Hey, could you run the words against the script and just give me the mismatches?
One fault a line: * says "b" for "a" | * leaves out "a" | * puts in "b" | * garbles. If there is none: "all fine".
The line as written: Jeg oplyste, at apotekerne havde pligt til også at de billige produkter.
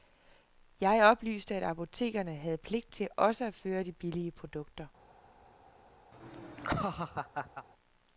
* puts in "føre"